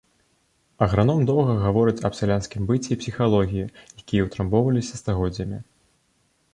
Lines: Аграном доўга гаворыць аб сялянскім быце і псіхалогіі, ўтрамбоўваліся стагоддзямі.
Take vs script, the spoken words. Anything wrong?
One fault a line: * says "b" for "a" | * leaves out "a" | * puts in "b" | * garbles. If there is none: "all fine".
* puts in "якія"